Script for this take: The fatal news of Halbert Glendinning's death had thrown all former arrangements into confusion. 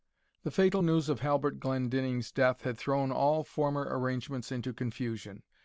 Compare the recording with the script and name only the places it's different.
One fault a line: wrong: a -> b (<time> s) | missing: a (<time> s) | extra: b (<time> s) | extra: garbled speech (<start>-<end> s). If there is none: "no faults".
no faults